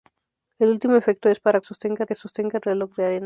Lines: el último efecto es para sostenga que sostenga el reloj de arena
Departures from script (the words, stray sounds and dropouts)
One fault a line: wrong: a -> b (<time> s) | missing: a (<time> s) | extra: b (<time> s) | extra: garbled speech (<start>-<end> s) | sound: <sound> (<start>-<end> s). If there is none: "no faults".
no faults